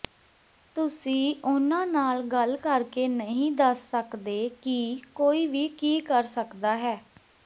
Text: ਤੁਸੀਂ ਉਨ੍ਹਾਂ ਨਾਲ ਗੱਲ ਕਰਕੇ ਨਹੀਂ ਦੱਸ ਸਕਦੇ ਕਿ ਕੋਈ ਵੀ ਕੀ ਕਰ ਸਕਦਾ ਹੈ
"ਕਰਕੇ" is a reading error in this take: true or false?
false